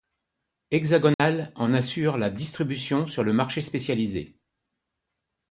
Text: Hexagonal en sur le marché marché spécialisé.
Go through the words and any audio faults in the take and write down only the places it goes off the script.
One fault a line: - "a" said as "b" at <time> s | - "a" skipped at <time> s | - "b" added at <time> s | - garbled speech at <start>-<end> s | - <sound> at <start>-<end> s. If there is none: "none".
- dropout at 1.1-1.2 s
- "assure la distribution" added at 1.8 s
- "marché" skipped at 3.6 s